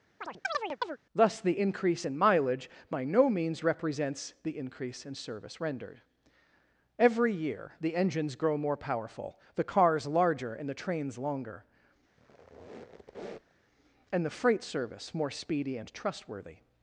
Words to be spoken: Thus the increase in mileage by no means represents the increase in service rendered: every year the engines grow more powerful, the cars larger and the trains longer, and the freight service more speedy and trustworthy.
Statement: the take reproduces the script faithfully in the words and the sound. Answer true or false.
false